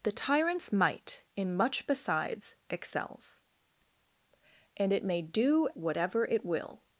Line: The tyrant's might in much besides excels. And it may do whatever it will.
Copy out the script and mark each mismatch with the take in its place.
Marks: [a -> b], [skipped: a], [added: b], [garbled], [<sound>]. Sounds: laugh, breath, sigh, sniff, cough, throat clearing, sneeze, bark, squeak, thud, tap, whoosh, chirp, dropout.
The tyrant's might in much besides excels. And it may do whatever it will.